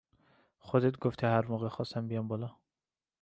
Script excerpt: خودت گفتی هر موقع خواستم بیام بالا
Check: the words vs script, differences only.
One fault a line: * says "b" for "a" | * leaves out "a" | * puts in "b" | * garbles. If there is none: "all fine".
all fine